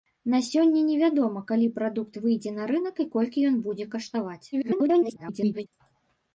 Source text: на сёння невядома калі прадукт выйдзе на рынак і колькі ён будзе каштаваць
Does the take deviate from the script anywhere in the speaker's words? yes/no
yes